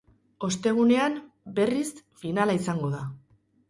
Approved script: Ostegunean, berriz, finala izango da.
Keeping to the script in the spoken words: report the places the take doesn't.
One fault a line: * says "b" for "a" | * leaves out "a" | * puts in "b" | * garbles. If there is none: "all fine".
all fine